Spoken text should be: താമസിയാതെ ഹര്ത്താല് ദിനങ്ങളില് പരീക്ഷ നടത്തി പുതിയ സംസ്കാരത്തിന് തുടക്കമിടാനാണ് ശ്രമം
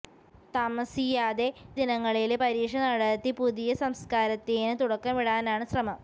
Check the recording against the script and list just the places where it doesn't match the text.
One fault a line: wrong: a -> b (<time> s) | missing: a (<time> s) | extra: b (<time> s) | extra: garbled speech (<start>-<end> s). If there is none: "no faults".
missing: ഹര്ത്താല് (1.4 s)